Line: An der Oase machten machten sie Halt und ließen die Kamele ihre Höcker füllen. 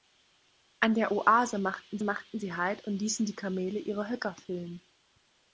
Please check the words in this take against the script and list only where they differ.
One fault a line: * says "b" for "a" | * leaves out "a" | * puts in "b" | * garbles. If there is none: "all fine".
all fine